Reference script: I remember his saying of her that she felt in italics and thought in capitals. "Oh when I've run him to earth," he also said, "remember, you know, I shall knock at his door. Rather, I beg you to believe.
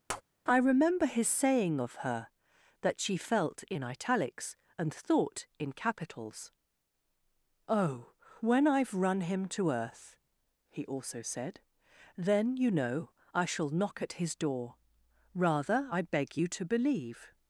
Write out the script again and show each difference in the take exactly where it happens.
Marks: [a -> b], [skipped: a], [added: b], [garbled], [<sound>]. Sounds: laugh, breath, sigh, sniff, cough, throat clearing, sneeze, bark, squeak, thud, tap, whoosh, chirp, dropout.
[tap] I remember his saying of her that she felt in italics and thought in capitals. "Oh when I've run him to earth," he also said, ["remember, -> then] you know, I shall knock at his door. Rather, I beg you to believe.